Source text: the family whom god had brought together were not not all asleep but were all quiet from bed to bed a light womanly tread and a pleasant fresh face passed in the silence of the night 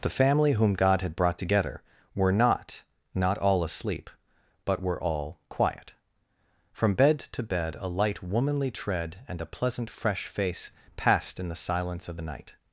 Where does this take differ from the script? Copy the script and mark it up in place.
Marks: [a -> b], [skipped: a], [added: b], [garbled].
the family whom god had brought together were not not all asleep but were all quiet from bed to bed a light womanly tread and a pleasant fresh face passed in the silence of the night